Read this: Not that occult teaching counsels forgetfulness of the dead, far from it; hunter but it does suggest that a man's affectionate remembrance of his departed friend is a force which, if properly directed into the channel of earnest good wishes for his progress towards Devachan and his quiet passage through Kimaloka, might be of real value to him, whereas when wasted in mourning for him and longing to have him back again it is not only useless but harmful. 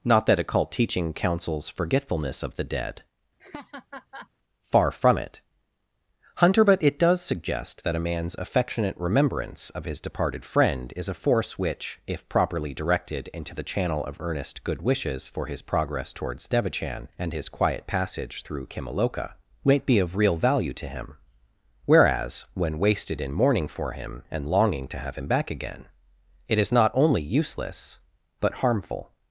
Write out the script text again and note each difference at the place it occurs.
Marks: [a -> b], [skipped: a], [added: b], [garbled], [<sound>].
Not that occult teaching counsels forgetfulness of the dead, [laugh] far from it; hunter but it does suggest that a man's affectionate remembrance of his departed friend is a force which, if properly directed into the channel of earnest good wishes for his progress towards Devachan and his quiet passage through Kimaloka, might be of real value to him, whereas when wasted in mourning for him and longing to have him back again it is not only useless but harmful.